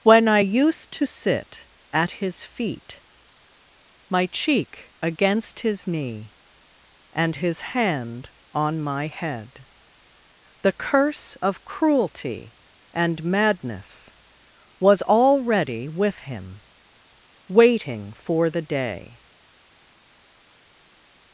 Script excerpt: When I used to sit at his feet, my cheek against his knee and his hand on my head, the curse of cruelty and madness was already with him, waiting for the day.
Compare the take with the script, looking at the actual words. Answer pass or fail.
pass